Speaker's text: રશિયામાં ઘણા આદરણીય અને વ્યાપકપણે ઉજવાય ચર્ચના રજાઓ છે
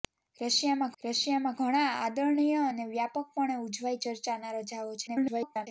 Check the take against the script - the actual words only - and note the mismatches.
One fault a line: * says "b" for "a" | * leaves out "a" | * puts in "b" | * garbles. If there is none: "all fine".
* puts in "રશિયામાં"
* garbles